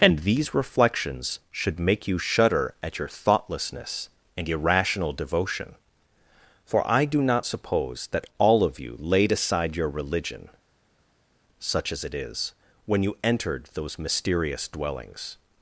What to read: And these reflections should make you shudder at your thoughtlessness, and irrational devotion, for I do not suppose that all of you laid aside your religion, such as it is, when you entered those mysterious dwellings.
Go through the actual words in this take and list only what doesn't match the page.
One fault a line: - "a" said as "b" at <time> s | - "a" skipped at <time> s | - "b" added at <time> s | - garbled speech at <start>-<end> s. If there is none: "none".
none